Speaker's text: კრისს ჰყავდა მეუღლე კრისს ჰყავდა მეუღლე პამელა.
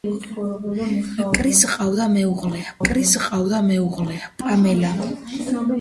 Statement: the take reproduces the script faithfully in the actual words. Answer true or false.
true